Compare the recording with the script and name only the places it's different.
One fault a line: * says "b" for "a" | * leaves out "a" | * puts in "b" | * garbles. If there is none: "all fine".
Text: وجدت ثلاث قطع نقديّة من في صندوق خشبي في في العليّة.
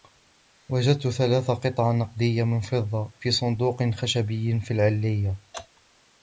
* puts in "فضّة"
* leaves out "في"